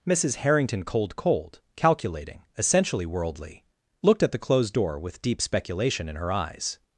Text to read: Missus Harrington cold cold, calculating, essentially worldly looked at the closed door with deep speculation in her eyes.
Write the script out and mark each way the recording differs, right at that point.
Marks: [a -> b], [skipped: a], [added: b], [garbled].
Missus Harrington cold cold, calculating, essentially worldly looked at the closed door with deep speculation in her eyes.